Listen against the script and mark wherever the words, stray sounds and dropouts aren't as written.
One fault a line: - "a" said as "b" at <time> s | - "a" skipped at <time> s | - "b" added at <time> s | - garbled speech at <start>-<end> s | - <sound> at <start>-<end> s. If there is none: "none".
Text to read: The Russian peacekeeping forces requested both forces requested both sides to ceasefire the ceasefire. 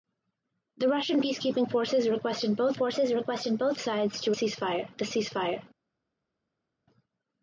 none